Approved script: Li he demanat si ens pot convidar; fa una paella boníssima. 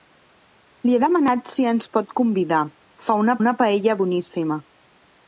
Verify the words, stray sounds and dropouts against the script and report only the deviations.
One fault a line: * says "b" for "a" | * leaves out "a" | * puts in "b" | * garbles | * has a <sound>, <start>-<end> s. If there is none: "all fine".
* puts in "una"